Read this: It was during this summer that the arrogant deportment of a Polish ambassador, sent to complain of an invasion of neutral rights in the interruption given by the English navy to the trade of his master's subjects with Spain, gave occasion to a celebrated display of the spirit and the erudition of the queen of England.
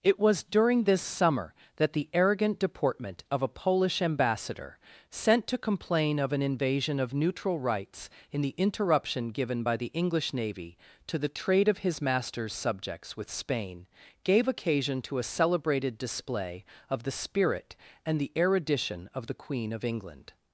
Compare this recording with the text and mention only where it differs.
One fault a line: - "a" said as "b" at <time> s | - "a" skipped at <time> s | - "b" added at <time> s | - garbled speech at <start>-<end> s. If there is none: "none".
none